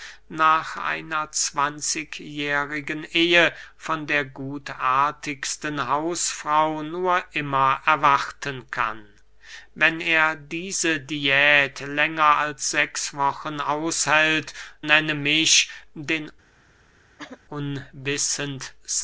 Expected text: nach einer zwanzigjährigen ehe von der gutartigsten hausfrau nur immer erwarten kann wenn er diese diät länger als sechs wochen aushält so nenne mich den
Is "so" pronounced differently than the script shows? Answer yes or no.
yes